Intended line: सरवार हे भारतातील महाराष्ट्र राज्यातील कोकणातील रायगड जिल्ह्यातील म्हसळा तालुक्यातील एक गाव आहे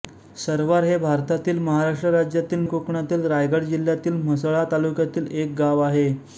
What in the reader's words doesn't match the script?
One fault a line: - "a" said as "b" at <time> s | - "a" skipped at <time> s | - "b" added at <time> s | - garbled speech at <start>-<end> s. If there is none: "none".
none